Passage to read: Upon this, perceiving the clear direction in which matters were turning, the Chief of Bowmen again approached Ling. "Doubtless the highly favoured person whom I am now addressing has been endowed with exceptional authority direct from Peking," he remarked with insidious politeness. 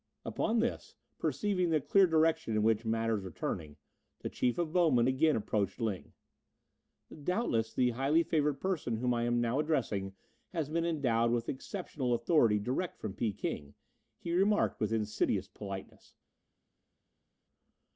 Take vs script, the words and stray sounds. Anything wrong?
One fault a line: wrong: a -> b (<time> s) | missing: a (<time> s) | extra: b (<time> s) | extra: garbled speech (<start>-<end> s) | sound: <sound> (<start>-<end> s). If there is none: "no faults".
no faults